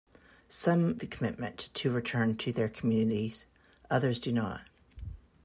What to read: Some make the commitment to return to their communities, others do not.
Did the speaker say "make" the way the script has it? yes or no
no